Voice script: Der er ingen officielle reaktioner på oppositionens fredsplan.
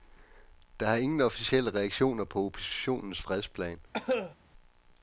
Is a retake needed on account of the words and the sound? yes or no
yes